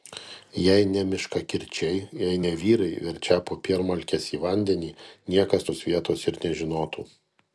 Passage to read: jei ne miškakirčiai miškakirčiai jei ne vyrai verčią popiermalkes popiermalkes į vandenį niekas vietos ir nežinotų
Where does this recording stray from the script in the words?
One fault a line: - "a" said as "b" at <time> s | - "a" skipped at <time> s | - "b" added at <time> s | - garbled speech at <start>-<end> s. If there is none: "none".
- "miškakirčiai" skipped at 2.0 s
- "popiermalkes" skipped at 4.3 s
- "tos" added at 5.7 s